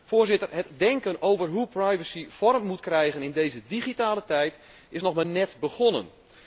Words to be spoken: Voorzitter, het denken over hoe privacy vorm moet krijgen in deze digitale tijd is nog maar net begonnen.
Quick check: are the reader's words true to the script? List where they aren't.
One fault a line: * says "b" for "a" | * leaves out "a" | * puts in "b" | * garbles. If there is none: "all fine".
all fine